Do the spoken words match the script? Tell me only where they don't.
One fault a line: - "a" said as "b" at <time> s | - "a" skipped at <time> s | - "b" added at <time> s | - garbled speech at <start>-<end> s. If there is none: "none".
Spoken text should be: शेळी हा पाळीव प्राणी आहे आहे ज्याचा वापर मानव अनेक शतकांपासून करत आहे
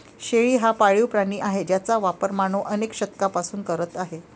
- "आहे" skipped at 1.6 s